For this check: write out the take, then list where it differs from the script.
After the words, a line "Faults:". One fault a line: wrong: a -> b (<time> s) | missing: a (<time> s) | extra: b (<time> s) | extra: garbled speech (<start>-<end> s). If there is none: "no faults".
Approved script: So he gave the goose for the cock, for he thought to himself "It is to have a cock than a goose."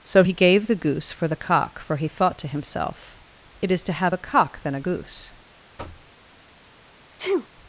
So he gave the goose for the cock, for he thought to himself "It is to have a cock than a goose."
Faults:
no faults